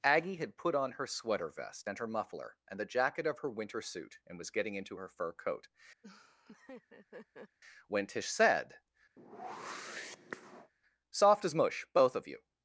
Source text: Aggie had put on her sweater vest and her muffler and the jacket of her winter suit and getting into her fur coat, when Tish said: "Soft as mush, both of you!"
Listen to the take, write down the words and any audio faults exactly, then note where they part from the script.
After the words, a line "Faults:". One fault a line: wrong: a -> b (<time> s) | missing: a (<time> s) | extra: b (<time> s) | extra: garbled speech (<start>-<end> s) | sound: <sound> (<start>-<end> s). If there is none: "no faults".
Aggie had put on her sweater vest and her muffler and the jacket of her winter suit and was getting into her fur coat, when Tish said: "Soft as mush, both of you!"
Faults:
extra: was (4.4 s)
sound: laugh (6.0-7.6 s)
sound: whoosh (9.2-10.7 s)